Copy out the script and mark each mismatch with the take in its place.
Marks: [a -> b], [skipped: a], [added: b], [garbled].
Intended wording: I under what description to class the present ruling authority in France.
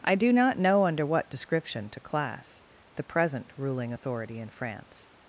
I [added: do not know] under what description to class the present ruling authority in France.